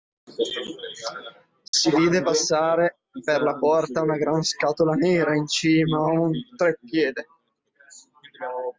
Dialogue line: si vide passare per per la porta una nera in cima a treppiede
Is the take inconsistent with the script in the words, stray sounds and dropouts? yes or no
yes